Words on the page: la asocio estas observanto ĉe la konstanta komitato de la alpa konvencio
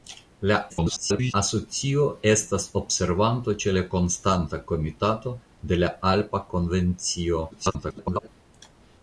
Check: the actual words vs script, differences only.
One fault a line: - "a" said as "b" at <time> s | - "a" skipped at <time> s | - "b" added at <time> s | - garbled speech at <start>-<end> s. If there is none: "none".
- garbled speech at 0.7-1.3 s
- garbled speech at 7.5-8.3 s